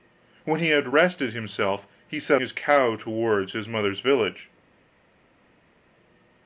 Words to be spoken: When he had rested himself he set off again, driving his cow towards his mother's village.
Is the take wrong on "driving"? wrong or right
wrong